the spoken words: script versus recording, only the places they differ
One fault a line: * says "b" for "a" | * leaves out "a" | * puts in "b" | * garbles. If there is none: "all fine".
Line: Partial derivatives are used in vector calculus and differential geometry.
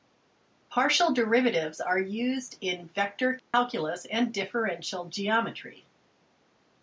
all fine